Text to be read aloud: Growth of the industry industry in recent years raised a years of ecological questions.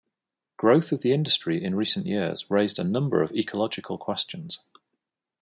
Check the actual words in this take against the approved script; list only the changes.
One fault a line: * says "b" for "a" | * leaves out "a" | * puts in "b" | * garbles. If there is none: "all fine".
* leaves out "industry"
* says "number" for "years"